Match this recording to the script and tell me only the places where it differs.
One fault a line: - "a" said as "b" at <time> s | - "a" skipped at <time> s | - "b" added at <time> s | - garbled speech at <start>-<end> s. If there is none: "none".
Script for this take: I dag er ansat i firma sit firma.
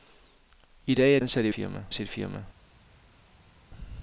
none